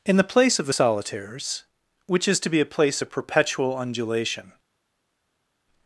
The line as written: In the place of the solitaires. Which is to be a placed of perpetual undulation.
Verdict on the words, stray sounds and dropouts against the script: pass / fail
fail